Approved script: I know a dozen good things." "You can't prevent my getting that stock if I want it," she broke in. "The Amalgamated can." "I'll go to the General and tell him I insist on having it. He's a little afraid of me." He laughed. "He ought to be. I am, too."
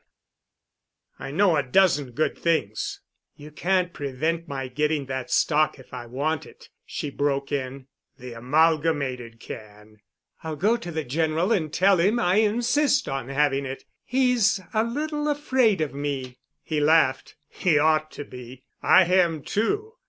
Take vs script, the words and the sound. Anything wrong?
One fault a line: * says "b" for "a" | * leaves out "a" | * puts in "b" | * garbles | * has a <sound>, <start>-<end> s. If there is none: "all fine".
all fine